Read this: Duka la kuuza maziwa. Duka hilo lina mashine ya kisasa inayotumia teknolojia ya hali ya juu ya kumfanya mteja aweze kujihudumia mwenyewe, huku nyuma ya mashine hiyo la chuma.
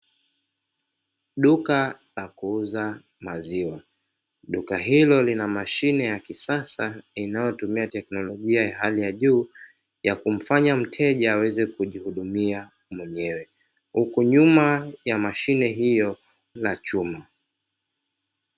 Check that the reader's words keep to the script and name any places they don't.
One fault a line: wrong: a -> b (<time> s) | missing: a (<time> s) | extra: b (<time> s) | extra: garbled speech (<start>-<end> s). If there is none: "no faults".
no faults